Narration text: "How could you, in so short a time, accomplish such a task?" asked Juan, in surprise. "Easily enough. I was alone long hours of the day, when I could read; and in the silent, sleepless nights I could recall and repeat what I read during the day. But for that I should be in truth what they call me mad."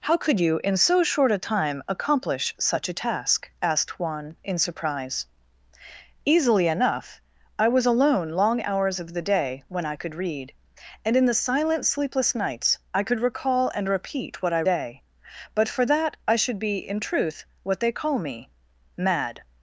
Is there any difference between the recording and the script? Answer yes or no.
yes